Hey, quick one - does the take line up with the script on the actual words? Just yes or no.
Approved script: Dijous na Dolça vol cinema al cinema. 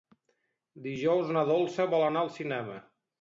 no